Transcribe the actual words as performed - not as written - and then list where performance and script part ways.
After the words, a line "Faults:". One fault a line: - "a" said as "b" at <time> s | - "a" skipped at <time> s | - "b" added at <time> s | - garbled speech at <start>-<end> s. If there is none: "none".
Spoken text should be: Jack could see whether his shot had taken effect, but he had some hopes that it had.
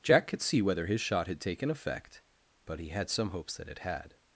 Jack could see whether his shot had taken effect, but he had some hopes that it had.
Faults:
none